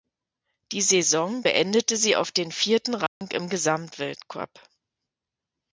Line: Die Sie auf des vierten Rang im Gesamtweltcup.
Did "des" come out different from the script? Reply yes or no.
yes